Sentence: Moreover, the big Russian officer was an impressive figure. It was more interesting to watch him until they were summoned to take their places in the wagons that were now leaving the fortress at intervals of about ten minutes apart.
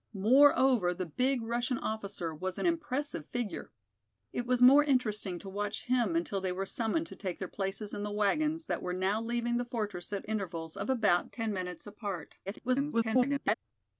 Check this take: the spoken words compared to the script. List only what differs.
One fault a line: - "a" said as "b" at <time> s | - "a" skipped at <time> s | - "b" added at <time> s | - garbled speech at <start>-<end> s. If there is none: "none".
- garbled speech at 12.5-13.6 s